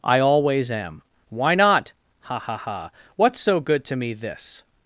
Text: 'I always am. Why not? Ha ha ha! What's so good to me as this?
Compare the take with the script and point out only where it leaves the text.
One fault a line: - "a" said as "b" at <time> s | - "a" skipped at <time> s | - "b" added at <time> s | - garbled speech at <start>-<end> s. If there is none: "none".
- "as" skipped at 4.1 s